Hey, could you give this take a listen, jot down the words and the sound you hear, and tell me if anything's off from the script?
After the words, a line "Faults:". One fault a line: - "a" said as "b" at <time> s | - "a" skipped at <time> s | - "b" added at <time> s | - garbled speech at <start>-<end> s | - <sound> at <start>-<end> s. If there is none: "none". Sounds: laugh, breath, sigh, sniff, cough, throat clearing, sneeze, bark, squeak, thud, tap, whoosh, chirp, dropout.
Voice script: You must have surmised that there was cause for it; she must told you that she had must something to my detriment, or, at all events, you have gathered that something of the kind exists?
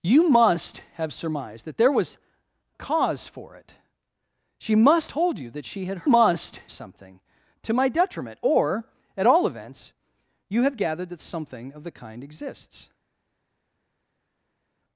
You must have surmised that there was cause for it; she must told you that she had must something to my detriment, or, at all events, you have gathered that something of the kind exists?
Faults:
none